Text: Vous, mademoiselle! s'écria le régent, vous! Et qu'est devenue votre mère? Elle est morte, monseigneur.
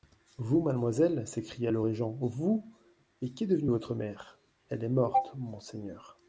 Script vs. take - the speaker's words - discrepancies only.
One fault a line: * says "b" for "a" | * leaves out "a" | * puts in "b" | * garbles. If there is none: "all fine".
all fine